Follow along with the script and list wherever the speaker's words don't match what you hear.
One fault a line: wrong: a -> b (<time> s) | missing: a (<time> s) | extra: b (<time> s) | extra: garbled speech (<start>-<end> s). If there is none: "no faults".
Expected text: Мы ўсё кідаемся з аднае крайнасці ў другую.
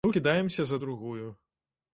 missing: ўсё (0.1 s)
missing: аднае крайнасці ў (0.8 s)